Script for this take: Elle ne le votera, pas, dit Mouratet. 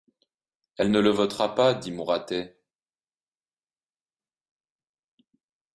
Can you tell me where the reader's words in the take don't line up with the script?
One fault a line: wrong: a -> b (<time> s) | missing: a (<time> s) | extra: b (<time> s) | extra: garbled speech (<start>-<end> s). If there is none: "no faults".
no faults